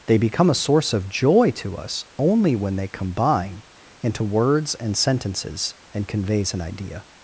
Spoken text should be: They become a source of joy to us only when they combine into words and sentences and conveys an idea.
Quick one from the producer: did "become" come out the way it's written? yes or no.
yes